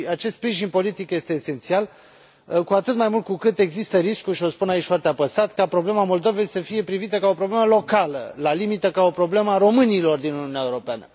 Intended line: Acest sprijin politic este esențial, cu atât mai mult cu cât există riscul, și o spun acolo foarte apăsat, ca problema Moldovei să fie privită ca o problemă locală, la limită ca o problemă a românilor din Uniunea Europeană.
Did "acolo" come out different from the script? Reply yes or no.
yes